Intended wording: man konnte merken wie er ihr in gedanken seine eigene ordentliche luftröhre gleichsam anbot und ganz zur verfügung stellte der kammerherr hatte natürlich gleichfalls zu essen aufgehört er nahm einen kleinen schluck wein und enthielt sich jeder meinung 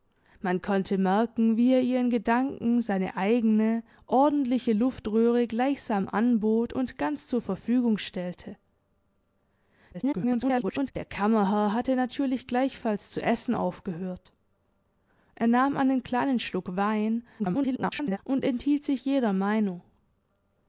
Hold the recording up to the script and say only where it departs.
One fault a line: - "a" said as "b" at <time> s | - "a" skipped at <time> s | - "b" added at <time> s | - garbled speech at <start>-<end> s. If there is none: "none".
- garbled speech at 9.9-10.9 s
- garbled speech at 17.4-18.2 s